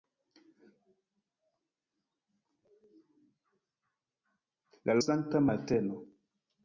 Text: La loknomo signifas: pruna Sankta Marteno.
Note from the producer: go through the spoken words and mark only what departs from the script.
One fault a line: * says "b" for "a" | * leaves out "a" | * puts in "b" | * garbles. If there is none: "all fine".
* leaves out "loknomo signifas pruna"